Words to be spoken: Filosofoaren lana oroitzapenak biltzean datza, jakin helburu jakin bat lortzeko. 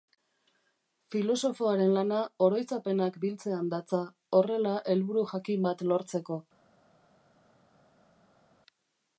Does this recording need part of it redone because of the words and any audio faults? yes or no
yes